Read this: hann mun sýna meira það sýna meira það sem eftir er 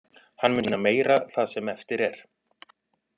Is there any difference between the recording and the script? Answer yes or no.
yes